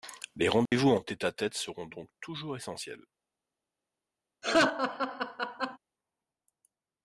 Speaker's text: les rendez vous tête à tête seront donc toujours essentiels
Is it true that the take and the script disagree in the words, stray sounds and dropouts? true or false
true